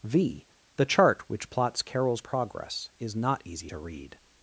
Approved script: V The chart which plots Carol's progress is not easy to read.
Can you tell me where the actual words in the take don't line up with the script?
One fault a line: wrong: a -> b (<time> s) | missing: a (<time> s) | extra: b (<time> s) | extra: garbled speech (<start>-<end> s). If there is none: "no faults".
no faults